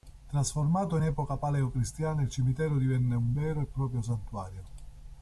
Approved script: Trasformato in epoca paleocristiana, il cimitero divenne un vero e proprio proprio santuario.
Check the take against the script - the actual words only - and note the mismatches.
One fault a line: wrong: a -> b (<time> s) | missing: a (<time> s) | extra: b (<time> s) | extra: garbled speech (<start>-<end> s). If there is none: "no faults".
missing: proprio (4.0 s)